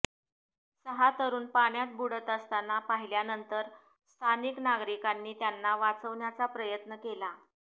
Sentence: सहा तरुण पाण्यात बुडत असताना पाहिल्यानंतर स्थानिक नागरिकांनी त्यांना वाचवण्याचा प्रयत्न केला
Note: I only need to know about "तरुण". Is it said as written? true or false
true